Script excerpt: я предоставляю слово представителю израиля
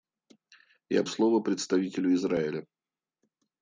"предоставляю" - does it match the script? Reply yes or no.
no